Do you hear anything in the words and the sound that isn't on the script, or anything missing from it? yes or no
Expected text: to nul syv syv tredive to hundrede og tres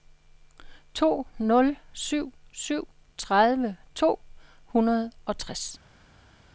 no